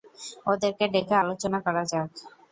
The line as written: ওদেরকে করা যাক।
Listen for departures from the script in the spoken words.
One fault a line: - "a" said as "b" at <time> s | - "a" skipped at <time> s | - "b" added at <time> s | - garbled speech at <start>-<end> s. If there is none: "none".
- "ডেকে আলোচনা" added at 0.9 s